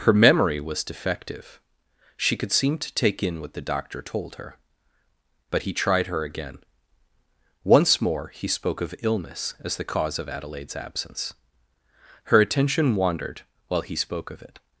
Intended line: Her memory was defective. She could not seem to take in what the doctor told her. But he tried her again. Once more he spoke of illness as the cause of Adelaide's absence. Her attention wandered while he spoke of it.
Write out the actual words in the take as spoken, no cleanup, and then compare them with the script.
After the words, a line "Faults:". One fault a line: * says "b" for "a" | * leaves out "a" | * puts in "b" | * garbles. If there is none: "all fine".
Her memory was defective. She could seem to take in what the doctor told her. But he tried her again. Once more he spoke of illness as the cause of Adelaide's absence. Her attention wandered while he spoke of it.
Faults:
* leaves out "not"